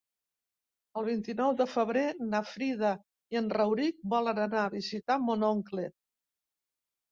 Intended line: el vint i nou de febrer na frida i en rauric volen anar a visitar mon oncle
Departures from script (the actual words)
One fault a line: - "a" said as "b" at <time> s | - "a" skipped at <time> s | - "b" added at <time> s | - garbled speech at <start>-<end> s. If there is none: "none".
none